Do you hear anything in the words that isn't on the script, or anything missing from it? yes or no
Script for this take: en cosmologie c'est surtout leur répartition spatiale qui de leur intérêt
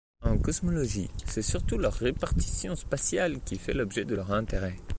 yes